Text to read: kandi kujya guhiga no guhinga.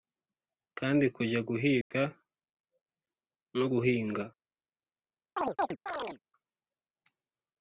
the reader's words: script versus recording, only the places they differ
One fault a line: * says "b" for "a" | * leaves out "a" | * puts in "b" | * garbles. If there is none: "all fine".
all fine